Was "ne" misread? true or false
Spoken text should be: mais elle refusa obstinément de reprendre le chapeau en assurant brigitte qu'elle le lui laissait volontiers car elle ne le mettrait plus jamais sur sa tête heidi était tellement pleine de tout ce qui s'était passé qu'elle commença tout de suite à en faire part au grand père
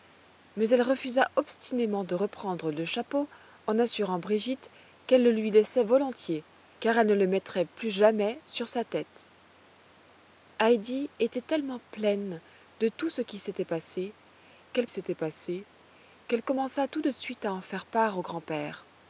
false